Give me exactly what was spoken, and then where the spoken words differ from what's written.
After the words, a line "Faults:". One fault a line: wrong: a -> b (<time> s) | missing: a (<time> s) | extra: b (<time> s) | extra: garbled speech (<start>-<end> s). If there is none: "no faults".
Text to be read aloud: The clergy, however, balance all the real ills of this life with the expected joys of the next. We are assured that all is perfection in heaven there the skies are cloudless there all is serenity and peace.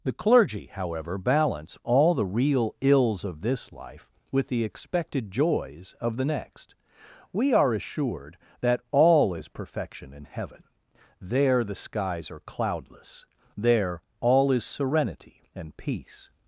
The clergy, however, balance all the real ills of this life with the expected joys of the next. We are assured that all is perfection in heaven there the skies are cloudless there all is serenity and peace.
Faults:
no faults